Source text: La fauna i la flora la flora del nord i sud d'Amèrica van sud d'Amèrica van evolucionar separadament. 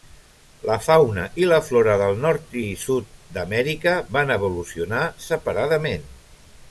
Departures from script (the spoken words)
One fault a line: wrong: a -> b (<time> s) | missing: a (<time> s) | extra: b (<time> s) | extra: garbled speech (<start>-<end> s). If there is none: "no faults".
missing: la flora (2.0 s)
missing: sud d'Amèrica van (4.3 s)